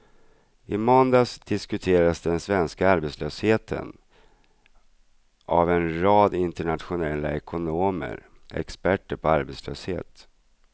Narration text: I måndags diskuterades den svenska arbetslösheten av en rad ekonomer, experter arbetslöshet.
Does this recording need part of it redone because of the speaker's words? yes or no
yes